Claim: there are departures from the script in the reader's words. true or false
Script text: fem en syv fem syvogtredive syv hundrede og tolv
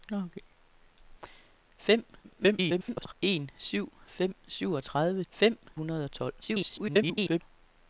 true